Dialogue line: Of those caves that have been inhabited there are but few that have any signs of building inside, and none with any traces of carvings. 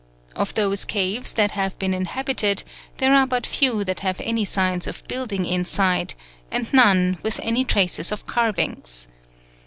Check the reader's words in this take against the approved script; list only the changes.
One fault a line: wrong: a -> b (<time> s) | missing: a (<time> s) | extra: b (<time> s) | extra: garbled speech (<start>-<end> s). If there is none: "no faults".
no faults